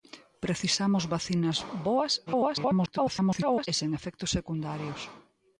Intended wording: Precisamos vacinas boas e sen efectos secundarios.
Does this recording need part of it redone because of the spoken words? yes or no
yes